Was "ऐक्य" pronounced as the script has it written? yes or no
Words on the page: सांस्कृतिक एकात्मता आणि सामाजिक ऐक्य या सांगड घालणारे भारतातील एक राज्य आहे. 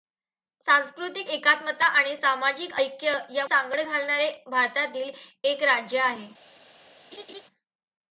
yes